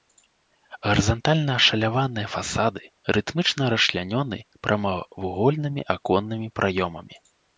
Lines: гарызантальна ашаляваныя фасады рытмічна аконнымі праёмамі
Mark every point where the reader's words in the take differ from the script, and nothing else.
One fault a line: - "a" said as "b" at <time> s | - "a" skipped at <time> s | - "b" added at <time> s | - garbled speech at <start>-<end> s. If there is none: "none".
- "расчлянёны прамавугольнымі" added at 3.8 s